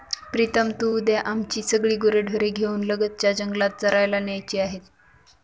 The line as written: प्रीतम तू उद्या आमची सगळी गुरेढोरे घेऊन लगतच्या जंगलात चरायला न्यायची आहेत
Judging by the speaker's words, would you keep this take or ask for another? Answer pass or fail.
pass